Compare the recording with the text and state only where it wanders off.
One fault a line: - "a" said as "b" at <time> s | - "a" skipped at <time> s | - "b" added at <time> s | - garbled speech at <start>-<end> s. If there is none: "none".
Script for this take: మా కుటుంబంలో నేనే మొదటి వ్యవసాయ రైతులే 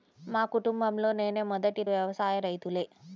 none